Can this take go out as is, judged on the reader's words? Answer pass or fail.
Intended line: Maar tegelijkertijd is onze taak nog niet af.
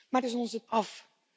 fail